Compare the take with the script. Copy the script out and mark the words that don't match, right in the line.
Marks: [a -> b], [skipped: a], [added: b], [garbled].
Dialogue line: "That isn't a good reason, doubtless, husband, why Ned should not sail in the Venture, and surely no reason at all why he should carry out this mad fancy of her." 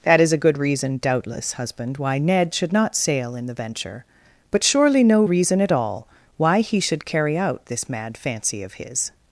"That [isn't -> is] a good reason, doubtless, husband, why Ned should not sail in the Venture, [and -> but] surely no reason at all why he should carry out this mad fancy of [her." -> his]